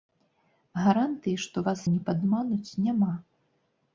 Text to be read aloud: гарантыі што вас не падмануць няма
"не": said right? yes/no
yes